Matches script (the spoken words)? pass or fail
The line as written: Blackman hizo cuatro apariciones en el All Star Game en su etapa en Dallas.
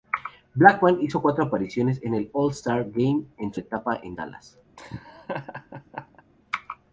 pass